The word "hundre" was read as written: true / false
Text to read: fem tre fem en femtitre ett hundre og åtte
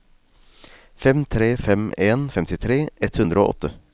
true